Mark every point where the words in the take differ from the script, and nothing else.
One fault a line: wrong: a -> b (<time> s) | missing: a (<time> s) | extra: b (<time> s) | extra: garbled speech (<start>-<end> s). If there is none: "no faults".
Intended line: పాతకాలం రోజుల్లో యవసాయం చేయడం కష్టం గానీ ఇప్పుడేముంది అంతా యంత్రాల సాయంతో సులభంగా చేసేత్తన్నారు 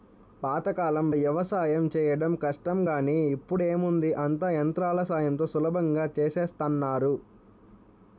missing: రోజుల్లో (1.1 s)